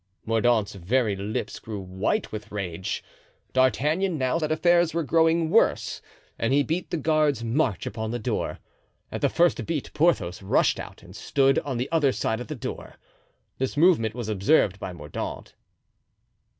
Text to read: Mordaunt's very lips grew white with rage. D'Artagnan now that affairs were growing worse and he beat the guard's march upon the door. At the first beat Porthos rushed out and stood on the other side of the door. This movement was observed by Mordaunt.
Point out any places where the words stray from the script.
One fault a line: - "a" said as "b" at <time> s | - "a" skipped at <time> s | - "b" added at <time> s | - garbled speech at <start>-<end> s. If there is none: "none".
none